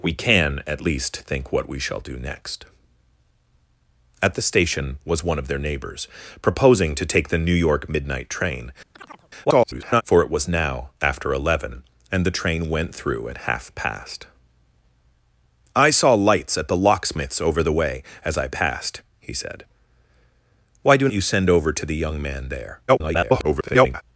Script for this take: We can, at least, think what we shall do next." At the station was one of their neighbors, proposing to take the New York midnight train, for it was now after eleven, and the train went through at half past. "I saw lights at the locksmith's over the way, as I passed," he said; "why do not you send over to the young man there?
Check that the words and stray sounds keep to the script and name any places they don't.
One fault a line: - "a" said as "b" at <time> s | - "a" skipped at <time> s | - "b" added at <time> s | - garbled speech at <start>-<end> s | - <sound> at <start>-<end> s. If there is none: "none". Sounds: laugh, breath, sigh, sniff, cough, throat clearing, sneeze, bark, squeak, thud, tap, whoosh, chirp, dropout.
- chirp at 8.9-9.3 s
- garbled speech at 9.4-10.0 s
- "not" skipped at 21.1 s
- garbled speech at 22.9-24.0 s